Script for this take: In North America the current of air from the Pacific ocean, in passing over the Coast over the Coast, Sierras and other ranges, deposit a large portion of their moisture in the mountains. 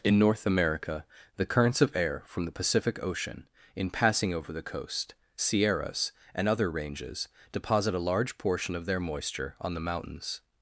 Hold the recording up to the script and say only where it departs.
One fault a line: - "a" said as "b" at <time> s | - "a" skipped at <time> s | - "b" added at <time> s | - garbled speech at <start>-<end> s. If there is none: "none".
- "current" said as "currents" at 1.4 s
- "over the Coast" skipped at 5.1 s
- "in" said as "on" at 9.6 s